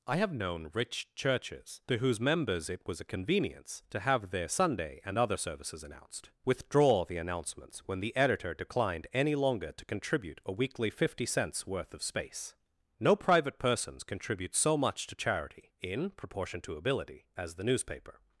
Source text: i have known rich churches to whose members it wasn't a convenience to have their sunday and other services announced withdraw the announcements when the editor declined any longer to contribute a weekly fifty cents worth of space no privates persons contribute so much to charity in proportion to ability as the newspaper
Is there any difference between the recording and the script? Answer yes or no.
yes